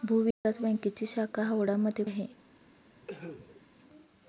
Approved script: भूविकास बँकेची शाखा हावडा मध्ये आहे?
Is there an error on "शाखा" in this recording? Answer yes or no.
no